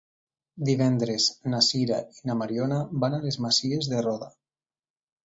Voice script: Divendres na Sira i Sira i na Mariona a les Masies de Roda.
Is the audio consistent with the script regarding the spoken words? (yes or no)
no